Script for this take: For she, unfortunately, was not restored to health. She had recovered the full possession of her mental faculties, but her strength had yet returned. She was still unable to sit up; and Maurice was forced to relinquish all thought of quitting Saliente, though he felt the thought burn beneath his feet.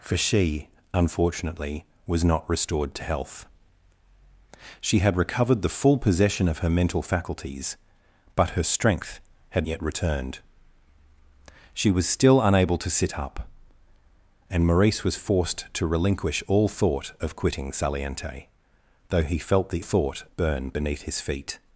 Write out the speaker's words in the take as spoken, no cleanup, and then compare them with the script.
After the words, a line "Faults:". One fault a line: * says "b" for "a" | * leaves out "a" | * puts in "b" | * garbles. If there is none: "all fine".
For she, unfortunately, was not restored to health. She had recovered the full possession of her mental faculties, but her strength had yet returned. She was still unable to sit up; and Maurice was forced to relinquish all thought of quitting Saliente, though he felt the thought burn beneath his feet.
Faults:
all fine